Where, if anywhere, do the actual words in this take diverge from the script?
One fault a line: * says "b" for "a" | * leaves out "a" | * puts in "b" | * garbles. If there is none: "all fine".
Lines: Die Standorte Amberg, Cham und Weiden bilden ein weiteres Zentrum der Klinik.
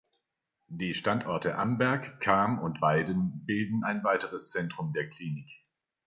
all fine